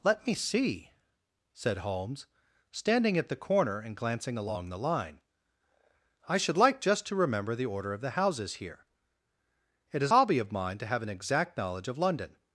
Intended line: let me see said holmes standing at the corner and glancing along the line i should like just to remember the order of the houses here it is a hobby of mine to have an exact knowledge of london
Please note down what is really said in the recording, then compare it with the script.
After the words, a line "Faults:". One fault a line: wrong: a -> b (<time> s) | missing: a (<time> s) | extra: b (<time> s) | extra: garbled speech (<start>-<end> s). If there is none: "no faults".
let me see said holmes standing at the corner and glancing along the line i should like just to remember the order of the houses here it is hobby of mine to have an exact knowledge of london
Faults:
missing: a (10.1 s)